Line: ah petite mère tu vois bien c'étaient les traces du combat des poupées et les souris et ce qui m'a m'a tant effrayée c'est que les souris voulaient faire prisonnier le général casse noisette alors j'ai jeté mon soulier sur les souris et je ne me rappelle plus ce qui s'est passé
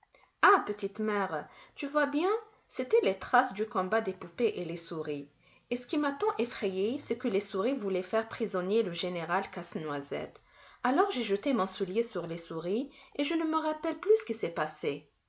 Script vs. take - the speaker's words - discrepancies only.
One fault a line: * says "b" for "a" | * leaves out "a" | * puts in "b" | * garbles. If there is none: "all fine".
* leaves out "m'a"